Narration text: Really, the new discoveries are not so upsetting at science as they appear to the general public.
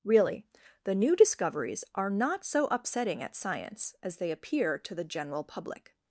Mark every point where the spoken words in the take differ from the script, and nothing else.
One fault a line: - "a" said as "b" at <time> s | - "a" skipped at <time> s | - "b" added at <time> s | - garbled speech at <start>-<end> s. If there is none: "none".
none